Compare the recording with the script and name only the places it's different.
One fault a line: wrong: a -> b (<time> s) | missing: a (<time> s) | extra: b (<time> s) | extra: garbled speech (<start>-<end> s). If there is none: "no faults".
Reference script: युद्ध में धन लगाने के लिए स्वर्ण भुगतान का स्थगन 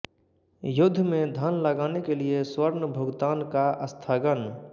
no faults